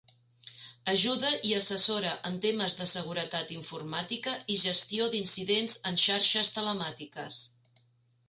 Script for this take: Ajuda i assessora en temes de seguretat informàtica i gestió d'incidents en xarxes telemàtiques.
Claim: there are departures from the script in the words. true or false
false